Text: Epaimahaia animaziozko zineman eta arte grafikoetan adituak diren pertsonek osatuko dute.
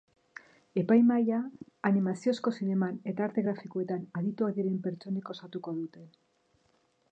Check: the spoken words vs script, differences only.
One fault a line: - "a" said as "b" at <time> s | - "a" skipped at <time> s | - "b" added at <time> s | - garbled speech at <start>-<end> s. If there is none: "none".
none